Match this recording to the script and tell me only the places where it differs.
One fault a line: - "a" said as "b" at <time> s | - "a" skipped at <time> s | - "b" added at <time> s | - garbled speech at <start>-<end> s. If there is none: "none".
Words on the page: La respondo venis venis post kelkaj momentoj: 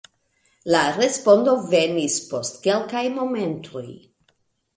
- "venis" skipped at 2.1 s